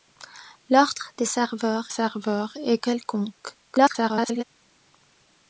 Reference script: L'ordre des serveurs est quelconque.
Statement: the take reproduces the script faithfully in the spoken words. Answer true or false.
false